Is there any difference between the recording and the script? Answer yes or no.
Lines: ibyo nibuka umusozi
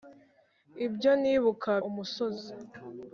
no